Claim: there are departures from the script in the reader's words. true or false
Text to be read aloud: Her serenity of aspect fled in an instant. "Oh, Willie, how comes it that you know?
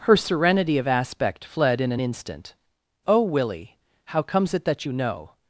false